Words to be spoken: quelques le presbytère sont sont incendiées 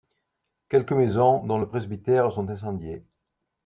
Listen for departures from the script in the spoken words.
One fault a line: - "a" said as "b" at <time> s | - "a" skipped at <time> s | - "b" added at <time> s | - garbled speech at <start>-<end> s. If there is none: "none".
- "maisons dont" added at 0.9 s
- "sont" skipped at 2.5 s